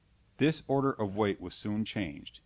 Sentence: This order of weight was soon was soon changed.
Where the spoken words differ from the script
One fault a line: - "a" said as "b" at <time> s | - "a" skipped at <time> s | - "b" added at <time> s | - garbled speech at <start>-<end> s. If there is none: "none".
- "was soon" skipped at 1.9 s